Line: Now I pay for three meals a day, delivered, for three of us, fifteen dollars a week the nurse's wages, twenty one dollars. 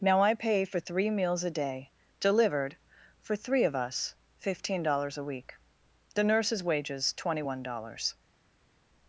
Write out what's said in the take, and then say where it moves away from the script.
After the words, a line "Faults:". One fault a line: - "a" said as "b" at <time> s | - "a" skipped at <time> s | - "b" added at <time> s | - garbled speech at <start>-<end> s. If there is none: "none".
Now I pay for three meals a day, delivered, for three of us, fifteen dollars a week the nurse's wages, twenty one dollars.
Faults:
none